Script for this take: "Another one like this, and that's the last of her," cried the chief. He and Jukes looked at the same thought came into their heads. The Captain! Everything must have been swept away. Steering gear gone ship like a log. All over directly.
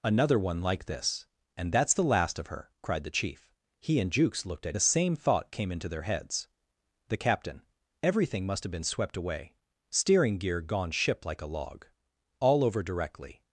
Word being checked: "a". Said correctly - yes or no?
yes